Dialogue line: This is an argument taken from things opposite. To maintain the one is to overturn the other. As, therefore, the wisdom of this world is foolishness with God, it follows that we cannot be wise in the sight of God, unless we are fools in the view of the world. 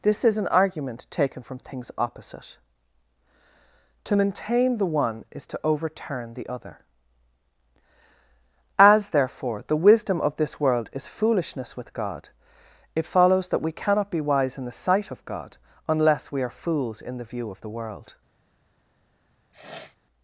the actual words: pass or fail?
pass